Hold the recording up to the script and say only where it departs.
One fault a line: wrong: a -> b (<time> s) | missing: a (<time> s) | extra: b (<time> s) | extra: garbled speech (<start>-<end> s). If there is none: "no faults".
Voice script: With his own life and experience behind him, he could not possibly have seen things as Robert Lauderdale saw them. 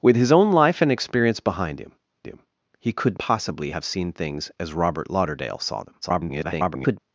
extra: him (2.2 s)
missing: not (3.2 s)
extra: garbled speech (6.0-7.0 s)